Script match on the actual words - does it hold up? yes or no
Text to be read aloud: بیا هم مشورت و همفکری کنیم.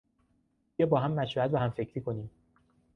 no